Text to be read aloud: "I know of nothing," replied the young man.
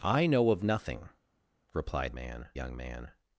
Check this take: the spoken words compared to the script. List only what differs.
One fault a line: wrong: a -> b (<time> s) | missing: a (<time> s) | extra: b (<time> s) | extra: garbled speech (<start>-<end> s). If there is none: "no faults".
wrong: the -> man (2.1 s)